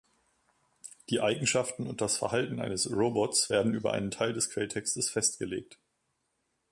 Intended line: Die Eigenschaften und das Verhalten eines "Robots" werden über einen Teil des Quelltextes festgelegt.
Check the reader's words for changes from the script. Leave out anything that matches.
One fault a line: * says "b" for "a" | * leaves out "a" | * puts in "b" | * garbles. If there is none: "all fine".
all fine